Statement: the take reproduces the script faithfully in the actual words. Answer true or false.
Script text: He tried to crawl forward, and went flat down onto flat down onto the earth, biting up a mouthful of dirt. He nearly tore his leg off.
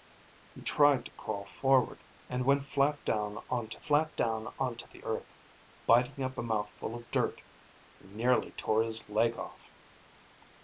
true